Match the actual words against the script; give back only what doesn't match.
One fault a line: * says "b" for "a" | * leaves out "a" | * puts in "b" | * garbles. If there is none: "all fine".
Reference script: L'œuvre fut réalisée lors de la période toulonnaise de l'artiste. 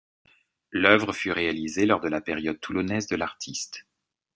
all fine